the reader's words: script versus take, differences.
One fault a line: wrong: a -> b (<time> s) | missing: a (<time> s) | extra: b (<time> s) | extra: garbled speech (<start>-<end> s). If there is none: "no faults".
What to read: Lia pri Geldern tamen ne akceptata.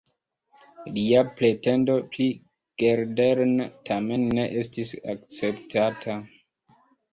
extra: pretendo (1.4 s)
extra: estis (4.6 s)